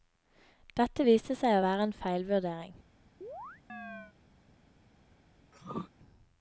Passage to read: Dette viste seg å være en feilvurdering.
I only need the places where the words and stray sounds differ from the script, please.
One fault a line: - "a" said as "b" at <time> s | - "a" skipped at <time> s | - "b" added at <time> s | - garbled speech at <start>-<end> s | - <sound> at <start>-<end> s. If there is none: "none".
- chirp at 3.2-4.2 s
- throat clearing at 5.5-5.9 s